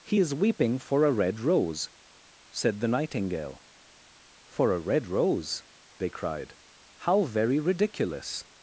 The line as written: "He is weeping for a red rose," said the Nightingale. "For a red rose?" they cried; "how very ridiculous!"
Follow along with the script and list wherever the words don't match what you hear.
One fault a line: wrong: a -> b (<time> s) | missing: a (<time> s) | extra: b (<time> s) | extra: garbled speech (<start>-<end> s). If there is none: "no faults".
no faults